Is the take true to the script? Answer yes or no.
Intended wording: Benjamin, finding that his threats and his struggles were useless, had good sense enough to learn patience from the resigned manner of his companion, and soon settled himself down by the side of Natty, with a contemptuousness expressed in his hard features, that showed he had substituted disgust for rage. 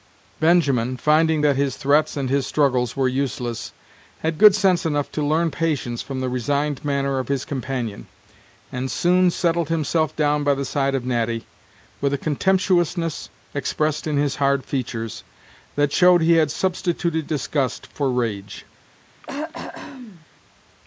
yes